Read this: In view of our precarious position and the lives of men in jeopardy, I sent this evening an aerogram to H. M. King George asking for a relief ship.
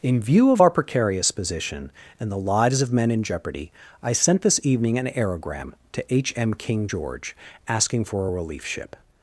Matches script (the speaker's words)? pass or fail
pass